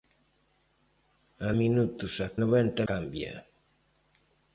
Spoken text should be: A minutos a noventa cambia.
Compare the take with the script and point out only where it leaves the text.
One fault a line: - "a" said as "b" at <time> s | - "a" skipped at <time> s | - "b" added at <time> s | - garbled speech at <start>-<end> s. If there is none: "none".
none